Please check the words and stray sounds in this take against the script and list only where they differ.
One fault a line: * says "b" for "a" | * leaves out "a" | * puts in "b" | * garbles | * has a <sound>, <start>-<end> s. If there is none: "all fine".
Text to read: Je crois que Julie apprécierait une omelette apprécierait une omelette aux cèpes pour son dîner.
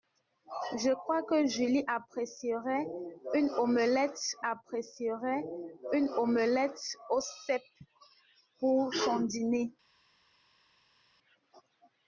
all fine